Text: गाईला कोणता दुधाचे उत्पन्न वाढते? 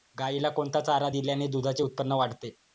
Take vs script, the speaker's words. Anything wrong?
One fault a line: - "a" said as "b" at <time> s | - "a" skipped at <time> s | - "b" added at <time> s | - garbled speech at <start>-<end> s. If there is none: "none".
- "चारा दिल्याने" added at 0.8 s